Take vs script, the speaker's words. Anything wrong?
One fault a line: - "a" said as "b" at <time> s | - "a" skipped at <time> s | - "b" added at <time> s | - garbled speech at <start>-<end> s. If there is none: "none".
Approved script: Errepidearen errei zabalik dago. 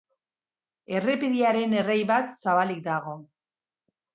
- "bat" added at 2.1 s